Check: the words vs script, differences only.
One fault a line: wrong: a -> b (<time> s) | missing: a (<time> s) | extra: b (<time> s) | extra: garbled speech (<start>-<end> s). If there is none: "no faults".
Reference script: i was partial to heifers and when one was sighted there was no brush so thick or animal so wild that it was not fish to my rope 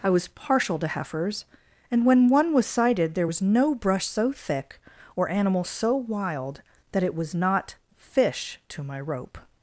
no faults